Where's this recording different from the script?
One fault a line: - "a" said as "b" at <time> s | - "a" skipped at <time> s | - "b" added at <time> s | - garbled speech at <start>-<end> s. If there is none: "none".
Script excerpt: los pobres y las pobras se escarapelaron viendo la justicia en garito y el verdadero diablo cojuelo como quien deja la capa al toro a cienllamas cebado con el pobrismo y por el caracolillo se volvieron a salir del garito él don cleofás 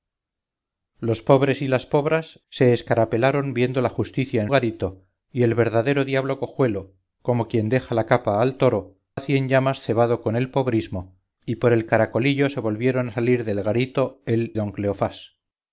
none